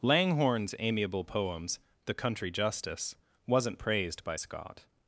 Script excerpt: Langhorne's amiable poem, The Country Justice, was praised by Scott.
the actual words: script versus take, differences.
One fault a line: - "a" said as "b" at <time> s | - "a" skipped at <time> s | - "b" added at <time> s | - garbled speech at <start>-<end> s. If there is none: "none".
- "poem" said as "poems" at 1.2 s
- "was" said as "wasn't" at 3.5 s